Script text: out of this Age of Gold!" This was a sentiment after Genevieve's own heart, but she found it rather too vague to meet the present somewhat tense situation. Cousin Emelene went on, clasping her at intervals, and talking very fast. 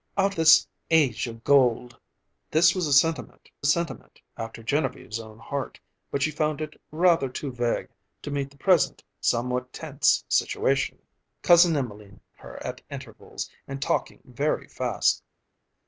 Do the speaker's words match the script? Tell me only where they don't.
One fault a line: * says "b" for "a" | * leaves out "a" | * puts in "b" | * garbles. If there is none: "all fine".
* leaves out "of"
* puts in "sentiment"
* leaves out "went on clasping"